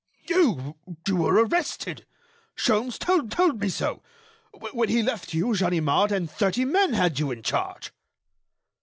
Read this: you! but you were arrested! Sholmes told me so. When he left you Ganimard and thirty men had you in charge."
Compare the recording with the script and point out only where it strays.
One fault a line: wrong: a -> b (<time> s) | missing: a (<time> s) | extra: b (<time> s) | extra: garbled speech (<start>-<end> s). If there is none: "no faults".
missing: but (0.8 s)
extra: told (3.3 s)